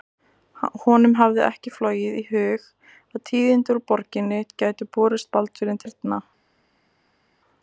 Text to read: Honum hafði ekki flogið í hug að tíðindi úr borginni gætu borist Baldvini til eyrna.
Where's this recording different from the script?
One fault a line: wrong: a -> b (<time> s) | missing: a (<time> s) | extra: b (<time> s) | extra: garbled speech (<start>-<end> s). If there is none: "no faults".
missing: til (5.8 s)